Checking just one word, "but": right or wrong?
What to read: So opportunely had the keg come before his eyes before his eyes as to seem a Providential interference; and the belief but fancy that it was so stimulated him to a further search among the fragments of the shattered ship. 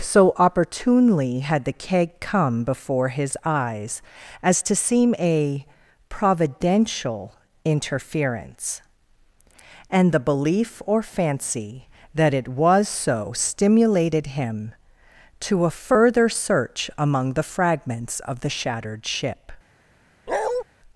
wrong